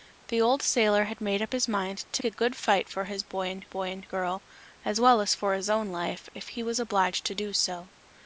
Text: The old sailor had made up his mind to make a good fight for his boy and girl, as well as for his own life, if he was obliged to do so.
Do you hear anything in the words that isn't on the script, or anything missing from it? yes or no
yes